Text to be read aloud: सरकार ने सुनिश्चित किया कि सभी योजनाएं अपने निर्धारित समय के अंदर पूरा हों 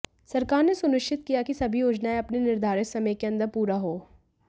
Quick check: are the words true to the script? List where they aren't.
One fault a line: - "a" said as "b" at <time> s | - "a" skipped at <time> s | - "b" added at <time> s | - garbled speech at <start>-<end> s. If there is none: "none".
none